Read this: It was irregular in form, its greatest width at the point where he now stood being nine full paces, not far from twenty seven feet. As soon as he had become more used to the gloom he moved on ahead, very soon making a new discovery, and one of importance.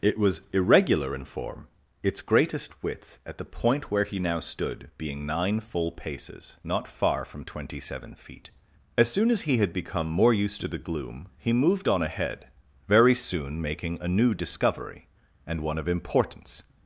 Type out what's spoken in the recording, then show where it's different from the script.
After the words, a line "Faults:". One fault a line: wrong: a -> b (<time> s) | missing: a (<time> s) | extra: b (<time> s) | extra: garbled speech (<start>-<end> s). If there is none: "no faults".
It was irregular in form, its greatest width at the point where he now stood being nine full paces, not far from twenty seven feet. As soon as he had become more used to the gloom he moved on ahead, very soon making a new discovery, and one of importance.
Faults:
no faults